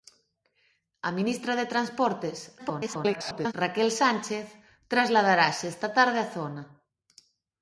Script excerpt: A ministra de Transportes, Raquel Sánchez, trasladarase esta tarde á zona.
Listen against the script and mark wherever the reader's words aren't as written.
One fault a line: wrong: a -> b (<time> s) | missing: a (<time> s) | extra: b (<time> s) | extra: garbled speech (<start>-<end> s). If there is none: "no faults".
extra: garbled speech (2.6-3.5 s)